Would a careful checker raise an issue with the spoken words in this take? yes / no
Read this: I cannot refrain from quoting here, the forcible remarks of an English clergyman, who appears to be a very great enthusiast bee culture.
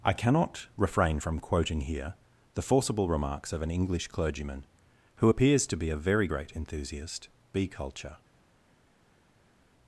no